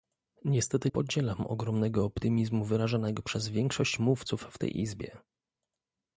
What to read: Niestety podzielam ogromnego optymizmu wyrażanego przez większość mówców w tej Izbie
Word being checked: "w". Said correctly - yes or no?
yes